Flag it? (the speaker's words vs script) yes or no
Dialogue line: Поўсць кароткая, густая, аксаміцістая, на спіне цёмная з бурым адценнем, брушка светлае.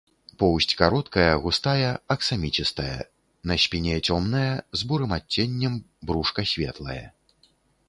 no